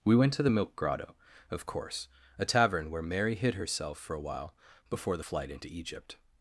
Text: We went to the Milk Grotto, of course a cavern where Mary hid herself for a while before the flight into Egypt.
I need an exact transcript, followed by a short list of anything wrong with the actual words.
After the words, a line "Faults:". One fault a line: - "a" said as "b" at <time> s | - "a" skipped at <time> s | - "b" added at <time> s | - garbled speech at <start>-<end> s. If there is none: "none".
We went to the Milk Grotto, of course a tavern where Mary hid herself for a while before the flight into Egypt.
Faults:
- "cavern" said as "tavern" at 2.5 s